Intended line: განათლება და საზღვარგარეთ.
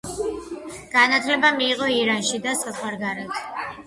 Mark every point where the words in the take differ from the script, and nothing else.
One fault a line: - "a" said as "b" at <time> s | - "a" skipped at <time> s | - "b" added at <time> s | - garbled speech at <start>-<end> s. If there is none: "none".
- "მიიღო ირანში" added at 1.6 s